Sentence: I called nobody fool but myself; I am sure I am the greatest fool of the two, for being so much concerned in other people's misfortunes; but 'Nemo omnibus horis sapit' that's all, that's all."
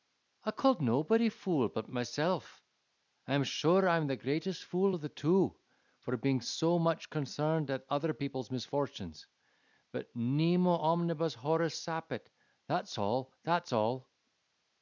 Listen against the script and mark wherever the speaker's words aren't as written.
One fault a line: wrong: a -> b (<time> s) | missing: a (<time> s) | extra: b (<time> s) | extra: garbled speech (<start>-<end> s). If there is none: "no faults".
wrong: in -> at (7.7 s)